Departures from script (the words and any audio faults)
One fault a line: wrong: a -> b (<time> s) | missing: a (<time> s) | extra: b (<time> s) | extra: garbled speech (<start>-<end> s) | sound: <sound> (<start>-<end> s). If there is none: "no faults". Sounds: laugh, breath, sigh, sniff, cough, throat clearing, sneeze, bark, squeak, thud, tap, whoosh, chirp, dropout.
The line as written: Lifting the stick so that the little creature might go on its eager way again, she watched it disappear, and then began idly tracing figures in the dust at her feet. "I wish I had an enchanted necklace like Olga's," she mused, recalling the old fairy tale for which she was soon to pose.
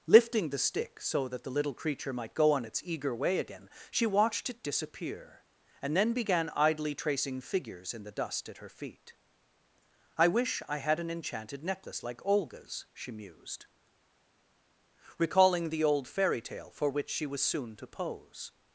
no faults